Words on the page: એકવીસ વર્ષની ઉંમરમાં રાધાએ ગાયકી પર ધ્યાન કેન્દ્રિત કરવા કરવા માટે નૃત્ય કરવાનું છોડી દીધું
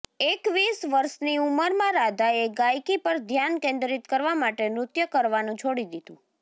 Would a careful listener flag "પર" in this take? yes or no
no